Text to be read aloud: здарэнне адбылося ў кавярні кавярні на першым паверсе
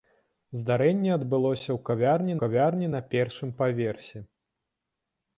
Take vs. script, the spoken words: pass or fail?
pass